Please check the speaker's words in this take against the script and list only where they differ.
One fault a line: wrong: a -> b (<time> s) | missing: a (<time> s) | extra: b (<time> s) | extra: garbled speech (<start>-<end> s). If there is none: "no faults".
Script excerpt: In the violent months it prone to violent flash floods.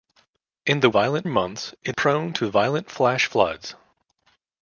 no faults